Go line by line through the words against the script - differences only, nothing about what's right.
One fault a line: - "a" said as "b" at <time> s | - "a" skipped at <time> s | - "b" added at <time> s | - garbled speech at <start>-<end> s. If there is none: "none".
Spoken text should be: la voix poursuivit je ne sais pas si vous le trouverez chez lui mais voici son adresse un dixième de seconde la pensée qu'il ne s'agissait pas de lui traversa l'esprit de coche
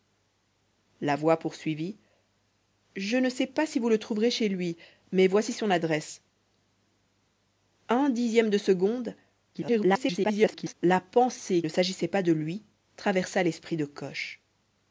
- garbled speech at 9.5-10.7 s
- "qu'il" skipped at 11.6 s